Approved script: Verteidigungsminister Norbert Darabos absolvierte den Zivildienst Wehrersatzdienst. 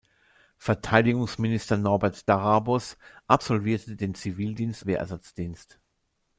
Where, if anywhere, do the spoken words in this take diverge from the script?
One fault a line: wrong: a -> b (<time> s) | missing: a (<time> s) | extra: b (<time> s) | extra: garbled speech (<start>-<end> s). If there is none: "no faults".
no faults